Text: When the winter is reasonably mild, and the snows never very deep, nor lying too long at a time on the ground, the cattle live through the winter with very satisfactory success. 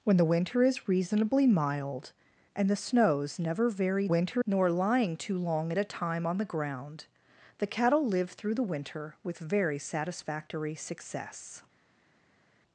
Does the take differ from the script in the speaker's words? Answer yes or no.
yes